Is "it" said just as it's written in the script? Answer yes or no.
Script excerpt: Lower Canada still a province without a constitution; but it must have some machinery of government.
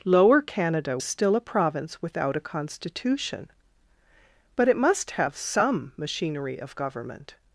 yes